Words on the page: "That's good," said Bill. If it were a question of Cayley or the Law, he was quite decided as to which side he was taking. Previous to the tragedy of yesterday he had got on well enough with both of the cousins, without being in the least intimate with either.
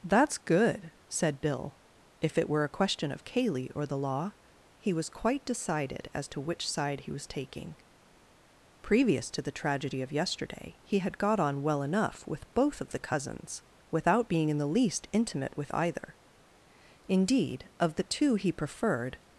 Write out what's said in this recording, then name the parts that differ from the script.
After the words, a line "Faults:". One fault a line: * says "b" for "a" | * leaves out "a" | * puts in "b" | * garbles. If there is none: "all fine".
"That's good," said Bill. If it were a question of Cayley or the Law, he was quite decided as to which side he was taking. Previous to the tragedy of yesterday he had got on well enough with both of the cousins, without being in the least intimate with either. Indeed, of the two he preferred
Faults:
* puts in "Indeed of the two he preferred"